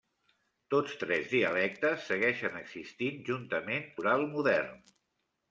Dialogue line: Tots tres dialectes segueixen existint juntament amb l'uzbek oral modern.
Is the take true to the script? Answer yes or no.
no